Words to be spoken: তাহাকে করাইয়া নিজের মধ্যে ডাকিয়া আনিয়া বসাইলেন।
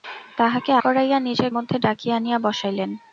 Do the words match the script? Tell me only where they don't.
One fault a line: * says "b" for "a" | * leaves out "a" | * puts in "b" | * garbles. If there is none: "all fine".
all fine